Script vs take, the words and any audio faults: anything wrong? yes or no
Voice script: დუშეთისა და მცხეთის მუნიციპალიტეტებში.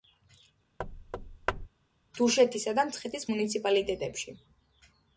yes